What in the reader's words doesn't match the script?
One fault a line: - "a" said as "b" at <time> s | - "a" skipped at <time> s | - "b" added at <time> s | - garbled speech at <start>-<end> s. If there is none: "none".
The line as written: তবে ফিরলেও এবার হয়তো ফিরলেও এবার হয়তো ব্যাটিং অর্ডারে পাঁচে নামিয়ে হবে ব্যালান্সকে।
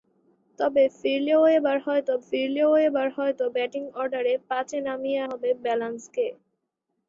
none